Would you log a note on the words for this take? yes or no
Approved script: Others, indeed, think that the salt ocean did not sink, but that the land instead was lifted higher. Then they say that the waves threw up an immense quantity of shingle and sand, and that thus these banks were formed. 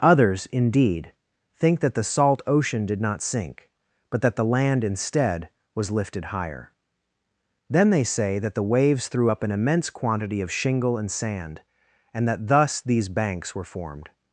no